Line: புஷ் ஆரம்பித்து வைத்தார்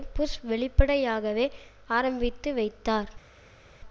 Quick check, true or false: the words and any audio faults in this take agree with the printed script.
false